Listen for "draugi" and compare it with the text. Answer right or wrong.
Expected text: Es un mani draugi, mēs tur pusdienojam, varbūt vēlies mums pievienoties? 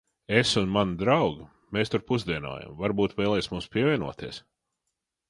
right